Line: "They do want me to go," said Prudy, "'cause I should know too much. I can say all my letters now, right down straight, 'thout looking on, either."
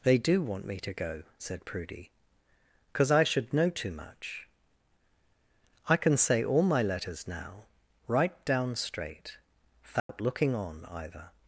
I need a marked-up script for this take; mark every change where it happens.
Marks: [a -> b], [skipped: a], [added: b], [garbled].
"They do want me to go," said Prudy, "'cause I should know too much. I can say all my letters now, right down straight, 'thout looking on, either."